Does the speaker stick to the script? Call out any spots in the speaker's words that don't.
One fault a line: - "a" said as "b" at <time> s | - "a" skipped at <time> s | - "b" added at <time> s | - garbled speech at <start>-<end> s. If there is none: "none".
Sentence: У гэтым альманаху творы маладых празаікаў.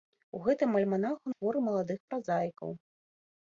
none